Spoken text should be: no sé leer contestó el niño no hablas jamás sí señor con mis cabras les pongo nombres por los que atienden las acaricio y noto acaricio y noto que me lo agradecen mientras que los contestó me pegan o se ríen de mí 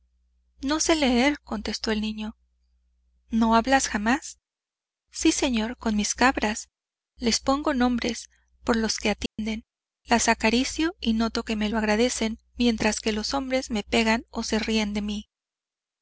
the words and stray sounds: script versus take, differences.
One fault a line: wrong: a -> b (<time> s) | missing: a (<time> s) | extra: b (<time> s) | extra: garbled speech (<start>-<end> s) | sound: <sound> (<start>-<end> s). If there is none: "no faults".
sound: dropout (9.3-9.4 s)
missing: acaricio y noto (11.4 s)
wrong: contestó -> hombres (13.3 s)